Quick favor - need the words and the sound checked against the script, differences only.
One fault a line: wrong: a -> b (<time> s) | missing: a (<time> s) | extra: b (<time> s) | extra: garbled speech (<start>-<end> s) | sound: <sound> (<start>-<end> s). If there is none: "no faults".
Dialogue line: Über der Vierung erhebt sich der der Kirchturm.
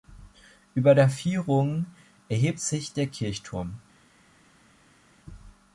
missing: der (3.1 s)